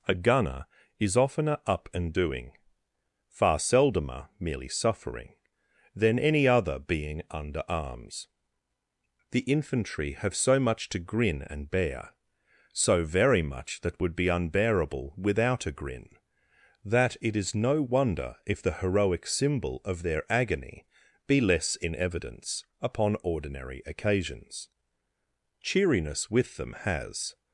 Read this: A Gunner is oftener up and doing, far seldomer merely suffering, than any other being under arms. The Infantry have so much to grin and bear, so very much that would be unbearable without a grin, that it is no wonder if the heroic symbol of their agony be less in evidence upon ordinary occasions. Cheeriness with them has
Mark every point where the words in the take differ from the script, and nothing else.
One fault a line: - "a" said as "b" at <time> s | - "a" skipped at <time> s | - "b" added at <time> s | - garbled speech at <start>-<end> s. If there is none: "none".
none